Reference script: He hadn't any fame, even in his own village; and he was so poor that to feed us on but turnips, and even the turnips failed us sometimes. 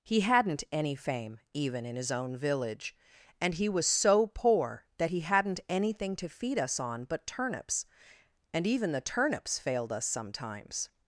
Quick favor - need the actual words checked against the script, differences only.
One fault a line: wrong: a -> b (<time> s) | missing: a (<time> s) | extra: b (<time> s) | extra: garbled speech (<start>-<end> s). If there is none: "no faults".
extra: he hadn't anything (5.1 s)